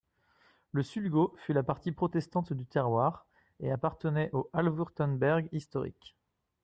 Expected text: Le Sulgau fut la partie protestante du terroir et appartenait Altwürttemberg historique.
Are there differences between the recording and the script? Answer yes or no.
yes